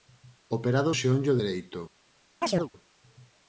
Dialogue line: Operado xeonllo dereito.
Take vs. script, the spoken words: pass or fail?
pass